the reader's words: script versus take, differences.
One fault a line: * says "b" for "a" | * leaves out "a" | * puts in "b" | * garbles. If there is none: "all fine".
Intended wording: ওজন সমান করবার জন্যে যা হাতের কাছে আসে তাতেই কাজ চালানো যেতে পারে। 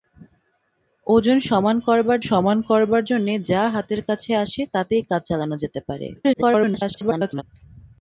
* puts in "সমান করবার"
* garbles